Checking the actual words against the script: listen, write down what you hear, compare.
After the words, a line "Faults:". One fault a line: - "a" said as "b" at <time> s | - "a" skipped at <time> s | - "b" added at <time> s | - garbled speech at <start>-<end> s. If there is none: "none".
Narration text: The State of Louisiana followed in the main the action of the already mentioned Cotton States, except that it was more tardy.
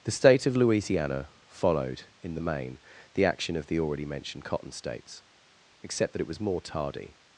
The State of Louisiana followed in the main the action of the already mentioned Cotton States, except that it was more tardy.
Faults:
none